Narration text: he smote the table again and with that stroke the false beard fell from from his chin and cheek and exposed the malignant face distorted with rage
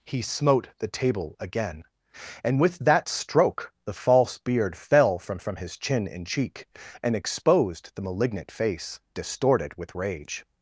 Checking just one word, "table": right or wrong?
right